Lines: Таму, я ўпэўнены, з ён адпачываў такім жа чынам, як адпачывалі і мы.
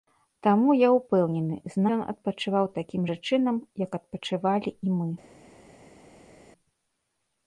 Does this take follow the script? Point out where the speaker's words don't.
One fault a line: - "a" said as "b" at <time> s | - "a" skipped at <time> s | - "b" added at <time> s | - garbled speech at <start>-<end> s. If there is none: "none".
none